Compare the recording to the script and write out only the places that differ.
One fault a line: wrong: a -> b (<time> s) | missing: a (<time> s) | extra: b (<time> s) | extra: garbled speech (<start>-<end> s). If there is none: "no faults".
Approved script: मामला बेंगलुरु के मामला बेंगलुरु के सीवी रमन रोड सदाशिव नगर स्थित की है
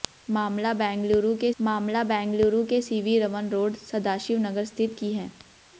no faults